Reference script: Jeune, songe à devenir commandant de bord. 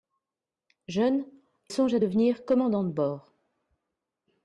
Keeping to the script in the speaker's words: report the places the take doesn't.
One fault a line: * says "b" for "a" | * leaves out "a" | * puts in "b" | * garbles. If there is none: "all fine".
all fine